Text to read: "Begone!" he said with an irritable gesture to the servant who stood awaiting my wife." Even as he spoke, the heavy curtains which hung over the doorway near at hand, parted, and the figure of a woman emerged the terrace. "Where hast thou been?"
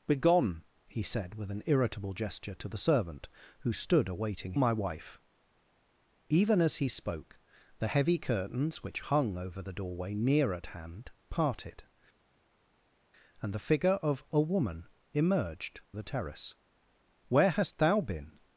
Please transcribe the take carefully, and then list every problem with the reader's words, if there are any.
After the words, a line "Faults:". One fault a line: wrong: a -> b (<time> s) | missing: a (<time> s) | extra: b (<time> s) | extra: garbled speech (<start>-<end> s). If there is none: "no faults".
"Begone!" he said with an irritable gesture to the servant who stood awaiting my wife." Even as he spoke, the heavy curtains which hung over the doorway near at hand, parted, and the figure of a woman emerged the terrace. "Where hast thou been?"
Faults:
no faults